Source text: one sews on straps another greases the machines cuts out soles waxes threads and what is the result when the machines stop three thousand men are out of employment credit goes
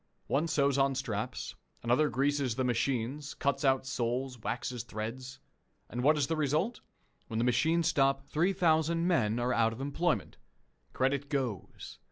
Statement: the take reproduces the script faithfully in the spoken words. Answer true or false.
true